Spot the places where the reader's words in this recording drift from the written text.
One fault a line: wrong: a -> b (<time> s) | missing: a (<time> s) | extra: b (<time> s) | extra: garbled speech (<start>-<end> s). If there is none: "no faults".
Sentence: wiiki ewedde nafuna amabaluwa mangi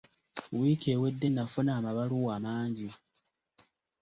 no faults